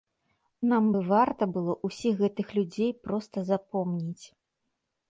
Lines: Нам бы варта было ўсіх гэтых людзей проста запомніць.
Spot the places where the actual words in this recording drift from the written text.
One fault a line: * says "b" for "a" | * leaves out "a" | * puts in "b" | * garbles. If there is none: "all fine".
all fine